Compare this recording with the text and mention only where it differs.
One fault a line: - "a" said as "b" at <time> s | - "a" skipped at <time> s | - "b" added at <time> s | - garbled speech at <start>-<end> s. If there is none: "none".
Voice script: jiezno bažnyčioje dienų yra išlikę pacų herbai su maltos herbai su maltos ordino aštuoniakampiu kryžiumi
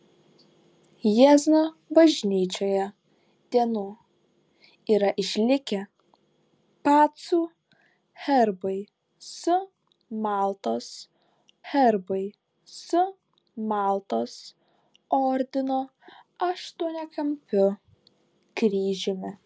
none